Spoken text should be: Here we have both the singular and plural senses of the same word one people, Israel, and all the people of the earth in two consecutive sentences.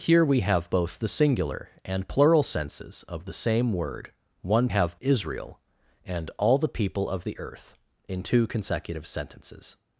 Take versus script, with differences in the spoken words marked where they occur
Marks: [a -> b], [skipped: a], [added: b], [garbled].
Here we have both the singular and plural senses of the same word one [people, -> have] Israel, and all the people of the earth in two consecutive sentences.